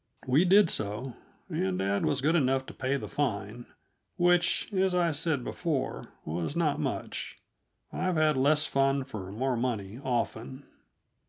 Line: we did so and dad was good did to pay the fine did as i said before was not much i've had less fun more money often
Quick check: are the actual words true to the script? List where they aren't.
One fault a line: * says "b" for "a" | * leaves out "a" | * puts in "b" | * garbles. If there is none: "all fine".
* says "enough" for "did"
* says "which" for "did"
* puts in "for"